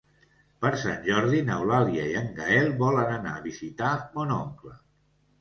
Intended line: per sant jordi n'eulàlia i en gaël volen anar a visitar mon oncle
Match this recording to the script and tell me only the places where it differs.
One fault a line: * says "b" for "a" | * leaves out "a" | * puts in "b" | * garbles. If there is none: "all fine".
all fine